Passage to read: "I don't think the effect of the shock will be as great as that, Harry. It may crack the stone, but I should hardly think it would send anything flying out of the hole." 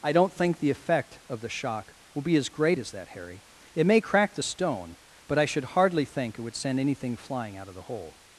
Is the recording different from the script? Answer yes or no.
no